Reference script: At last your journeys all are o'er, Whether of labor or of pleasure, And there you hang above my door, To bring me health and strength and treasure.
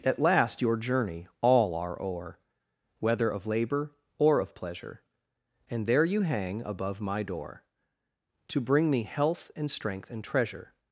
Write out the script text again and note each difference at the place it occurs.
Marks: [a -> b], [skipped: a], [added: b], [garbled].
At last your [journeys -> journey] all are o'er, Whether of labor or of pleasure, And there you hang above my door, To bring me health and strength and treasure.